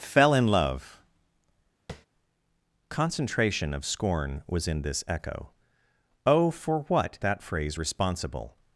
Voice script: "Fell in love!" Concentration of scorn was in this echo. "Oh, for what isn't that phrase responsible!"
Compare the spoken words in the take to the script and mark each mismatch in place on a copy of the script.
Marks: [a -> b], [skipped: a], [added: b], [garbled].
"Fell in love!" Concentration of scorn was in this echo. "Oh, for what [skipped: isn't] that phrase responsible!"